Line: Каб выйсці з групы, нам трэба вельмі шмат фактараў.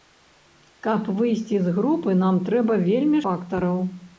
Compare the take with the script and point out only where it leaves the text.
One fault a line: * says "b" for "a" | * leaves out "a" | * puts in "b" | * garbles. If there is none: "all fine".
* leaves out "шмат"